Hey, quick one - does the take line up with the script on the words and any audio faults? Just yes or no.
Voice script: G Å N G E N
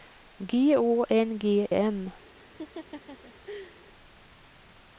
no